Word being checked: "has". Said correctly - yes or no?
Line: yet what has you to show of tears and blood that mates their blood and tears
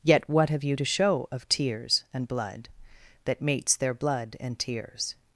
no